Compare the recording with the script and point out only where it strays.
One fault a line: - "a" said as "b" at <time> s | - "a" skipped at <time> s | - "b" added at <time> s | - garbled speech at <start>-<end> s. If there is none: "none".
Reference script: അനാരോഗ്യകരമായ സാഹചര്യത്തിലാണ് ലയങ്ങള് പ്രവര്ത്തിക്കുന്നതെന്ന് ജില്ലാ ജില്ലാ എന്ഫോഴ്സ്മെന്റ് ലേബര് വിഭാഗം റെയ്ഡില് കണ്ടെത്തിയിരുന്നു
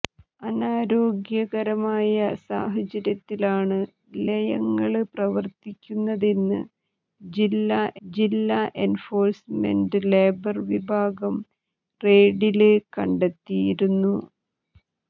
none